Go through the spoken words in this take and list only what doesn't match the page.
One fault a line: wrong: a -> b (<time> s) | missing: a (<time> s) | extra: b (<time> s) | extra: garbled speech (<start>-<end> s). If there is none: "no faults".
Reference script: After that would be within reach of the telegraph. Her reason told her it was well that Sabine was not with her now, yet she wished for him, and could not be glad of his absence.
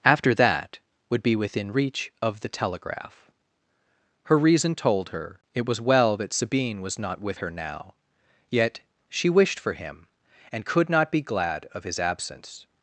no faults